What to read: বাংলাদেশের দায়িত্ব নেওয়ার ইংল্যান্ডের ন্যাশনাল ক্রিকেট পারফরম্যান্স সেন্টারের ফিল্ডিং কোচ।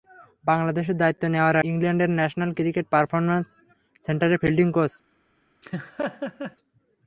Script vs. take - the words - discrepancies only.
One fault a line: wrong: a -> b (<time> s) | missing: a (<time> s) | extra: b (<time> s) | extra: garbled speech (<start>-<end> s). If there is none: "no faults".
no faults